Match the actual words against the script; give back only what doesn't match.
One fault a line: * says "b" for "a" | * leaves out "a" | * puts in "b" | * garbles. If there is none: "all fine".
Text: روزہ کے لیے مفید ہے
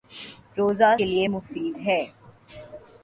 all fine